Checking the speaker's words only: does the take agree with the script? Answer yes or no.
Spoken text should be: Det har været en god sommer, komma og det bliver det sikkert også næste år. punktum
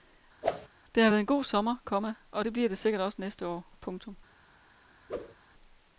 yes